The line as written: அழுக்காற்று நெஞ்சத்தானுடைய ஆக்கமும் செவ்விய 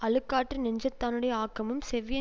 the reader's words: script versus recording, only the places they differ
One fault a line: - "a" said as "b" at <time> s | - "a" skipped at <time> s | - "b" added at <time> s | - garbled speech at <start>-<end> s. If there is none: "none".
none